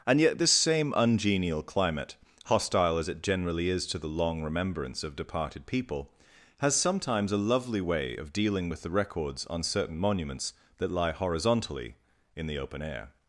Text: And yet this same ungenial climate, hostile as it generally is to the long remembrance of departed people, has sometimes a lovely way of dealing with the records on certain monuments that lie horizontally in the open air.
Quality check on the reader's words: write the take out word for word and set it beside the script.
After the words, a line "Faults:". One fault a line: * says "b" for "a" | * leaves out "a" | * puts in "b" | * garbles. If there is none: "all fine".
And yet this same ungenial climate, hostile as it generally is to the long remembrance of departed people, has sometimes a lovely way of dealing with the records on certain monuments that lie horizontally in the open air.
Faults:
all fine